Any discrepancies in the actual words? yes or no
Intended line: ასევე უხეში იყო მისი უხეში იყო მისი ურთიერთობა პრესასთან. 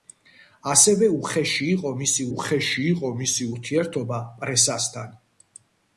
no